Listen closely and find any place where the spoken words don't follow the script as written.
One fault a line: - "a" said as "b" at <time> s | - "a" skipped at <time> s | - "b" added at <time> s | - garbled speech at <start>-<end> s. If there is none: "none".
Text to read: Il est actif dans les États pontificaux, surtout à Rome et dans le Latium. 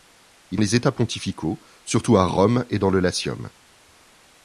- "est actif dans" skipped at 0.6 s